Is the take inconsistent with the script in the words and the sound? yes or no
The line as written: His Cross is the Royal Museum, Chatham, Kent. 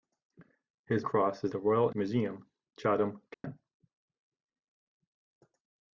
yes